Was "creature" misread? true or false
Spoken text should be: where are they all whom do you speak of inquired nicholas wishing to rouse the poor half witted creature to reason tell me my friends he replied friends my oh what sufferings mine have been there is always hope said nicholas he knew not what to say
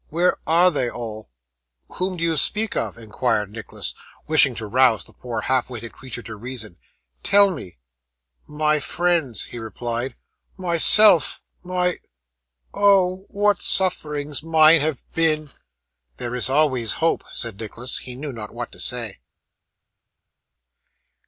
false